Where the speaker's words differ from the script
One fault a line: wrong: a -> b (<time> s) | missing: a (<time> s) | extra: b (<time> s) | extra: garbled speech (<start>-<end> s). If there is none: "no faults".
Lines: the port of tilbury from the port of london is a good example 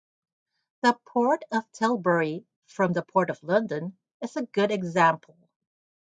no faults